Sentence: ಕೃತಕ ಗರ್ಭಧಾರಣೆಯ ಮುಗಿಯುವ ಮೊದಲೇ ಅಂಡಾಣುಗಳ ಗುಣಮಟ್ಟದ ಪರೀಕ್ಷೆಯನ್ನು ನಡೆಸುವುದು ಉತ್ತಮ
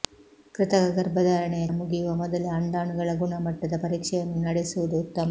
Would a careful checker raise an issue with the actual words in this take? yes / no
no